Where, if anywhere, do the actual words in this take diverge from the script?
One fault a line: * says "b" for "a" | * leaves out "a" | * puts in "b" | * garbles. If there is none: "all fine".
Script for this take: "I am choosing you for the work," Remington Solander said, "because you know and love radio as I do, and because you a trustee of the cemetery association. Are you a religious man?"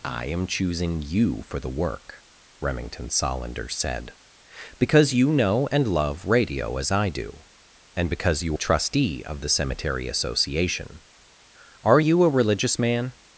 all fine